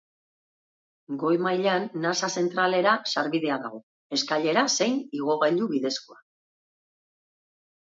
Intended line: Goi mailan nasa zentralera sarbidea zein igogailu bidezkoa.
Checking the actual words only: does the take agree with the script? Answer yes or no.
no